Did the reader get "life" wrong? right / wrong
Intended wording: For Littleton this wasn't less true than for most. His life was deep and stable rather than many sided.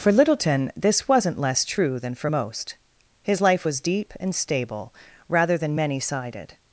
right